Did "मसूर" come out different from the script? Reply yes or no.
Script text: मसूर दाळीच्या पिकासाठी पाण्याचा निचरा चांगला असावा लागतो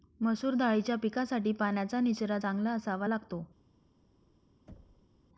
no